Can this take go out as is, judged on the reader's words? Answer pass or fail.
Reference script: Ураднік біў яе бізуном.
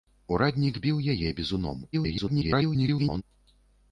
fail